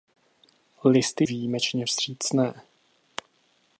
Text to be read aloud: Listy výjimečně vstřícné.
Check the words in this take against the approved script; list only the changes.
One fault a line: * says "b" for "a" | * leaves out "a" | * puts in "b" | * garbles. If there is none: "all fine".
all fine